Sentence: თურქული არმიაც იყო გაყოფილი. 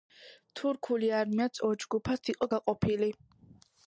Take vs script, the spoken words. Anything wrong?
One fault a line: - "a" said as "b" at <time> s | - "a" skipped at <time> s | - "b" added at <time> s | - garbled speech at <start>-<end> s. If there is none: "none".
- "ორ ჯგუფად" added at 1.7 s